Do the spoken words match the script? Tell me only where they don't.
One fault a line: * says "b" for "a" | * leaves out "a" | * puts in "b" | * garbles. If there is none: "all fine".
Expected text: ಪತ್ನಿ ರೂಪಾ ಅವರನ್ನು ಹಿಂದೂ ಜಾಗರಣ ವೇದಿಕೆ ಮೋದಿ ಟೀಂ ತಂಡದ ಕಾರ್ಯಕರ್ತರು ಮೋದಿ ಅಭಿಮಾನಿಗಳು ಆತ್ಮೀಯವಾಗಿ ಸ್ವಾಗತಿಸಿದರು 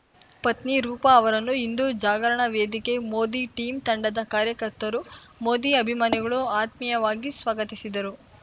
all fine